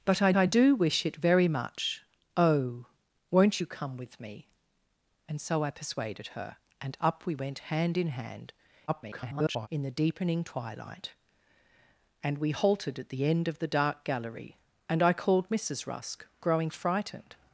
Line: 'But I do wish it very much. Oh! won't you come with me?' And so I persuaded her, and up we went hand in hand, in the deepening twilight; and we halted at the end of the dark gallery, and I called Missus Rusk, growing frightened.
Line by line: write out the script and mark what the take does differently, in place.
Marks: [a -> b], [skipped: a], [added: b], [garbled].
'But I [added: I] do wish it very much. Oh! won't you come with me?' And so I persuaded her, and up we went hand in hand, [garbled] in the deepening twilight; and we halted at the end of the dark gallery, and I called Missus Rusk, growing frightened.